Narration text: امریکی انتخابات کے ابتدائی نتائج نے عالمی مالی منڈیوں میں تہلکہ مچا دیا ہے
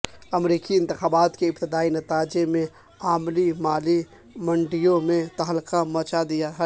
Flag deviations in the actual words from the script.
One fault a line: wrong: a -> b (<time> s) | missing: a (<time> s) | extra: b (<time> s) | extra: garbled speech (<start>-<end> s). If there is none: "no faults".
no faults